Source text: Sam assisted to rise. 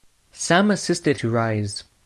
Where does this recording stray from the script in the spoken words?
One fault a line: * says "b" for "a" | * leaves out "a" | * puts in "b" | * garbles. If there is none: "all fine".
all fine